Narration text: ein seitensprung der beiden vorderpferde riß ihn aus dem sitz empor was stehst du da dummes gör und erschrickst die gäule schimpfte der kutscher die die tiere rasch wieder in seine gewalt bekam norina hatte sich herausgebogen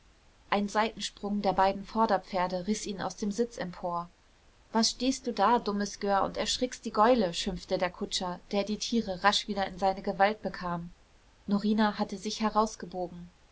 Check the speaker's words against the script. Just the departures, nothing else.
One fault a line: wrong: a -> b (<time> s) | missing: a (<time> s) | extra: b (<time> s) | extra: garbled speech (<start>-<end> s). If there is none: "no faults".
wrong: die -> der (8.5 s)